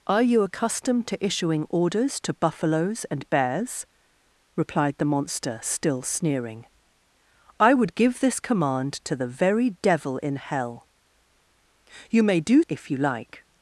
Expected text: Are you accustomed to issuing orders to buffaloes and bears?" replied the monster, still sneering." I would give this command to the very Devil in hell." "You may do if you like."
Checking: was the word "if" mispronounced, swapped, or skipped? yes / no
no